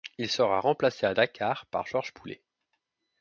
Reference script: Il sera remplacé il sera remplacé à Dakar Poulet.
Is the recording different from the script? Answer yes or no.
yes